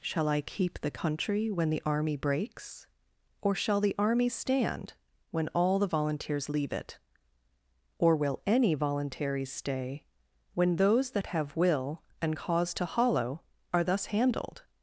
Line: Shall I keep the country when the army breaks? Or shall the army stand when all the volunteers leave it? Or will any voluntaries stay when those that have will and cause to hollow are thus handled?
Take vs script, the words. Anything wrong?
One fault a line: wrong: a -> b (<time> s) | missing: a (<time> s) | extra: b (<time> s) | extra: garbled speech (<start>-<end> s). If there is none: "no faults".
no faults